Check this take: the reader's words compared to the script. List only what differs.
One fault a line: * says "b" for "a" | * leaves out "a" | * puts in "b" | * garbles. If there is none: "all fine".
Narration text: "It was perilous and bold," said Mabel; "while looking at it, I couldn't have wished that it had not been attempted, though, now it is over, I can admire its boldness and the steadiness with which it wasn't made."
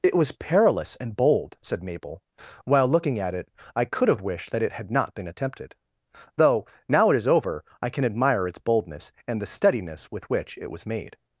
* says "could" for "couldn't"
* says "was" for "wasn't"